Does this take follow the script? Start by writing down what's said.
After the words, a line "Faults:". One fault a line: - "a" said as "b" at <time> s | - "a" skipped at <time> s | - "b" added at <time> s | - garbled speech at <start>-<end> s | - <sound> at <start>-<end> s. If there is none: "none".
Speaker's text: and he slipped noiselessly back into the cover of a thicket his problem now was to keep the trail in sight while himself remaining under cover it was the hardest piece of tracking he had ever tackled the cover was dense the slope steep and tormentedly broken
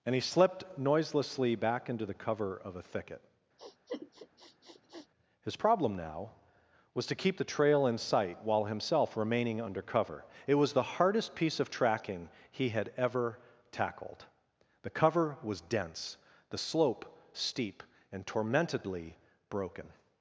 and he slipped noiselessly back into the cover of a thicket his problem now was to keep the trail in sight while himself remaining under cover it was the hardest piece of tracking he had ever tackled the cover was dense the slope steep and tormentedly broken
Faults:
- sniff at 3.6-5.1 s